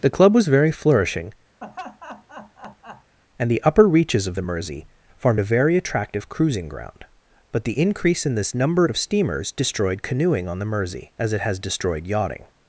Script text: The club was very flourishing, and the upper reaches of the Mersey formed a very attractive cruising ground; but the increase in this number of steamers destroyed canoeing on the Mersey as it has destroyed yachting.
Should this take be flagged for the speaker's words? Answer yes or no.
no